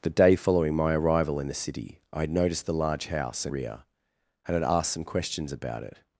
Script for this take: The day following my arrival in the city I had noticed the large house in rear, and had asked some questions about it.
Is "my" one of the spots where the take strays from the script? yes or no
no